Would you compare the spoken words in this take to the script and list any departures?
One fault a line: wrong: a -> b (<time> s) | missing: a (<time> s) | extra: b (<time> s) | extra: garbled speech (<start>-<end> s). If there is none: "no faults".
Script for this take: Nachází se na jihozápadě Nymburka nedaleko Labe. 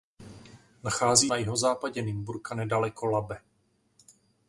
missing: se (1.3 s)